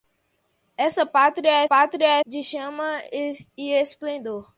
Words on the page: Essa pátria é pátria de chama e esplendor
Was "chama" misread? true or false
false